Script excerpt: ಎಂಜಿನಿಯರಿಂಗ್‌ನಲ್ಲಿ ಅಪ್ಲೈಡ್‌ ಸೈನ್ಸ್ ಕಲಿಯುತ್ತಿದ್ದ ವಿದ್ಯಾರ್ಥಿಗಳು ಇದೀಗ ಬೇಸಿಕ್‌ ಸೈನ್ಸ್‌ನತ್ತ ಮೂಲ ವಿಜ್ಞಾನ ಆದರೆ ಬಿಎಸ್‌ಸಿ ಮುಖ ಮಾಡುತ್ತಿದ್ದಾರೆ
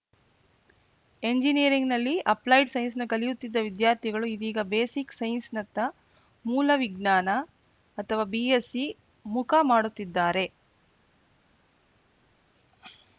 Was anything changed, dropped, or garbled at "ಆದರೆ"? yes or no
yes